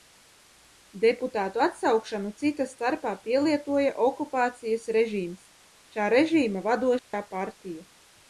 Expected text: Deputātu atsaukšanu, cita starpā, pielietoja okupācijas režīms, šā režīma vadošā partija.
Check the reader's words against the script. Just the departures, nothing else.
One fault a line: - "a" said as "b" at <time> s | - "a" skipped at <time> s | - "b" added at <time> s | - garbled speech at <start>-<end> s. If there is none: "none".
none